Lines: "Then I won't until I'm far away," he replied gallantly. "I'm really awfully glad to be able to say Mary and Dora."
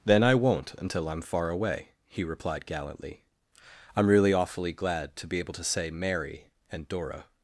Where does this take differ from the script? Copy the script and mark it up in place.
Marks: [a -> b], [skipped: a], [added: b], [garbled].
"Then I won't until I'm far away," he replied gallantly. "I'm really awfully glad to be able to say Mary and Dora."